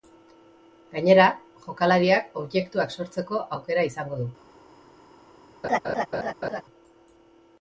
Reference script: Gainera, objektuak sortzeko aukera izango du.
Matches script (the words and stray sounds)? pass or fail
fail